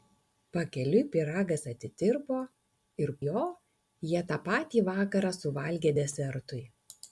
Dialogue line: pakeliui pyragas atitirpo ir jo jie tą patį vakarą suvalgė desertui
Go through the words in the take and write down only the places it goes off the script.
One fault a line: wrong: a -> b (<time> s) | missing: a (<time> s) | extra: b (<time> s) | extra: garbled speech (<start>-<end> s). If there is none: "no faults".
no faults